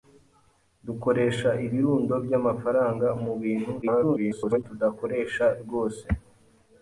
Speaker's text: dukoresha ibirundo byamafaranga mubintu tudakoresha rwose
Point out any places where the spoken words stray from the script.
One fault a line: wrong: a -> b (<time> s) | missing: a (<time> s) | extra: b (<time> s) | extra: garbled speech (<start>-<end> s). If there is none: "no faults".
extra: garbled speech (3.8-4.6 s)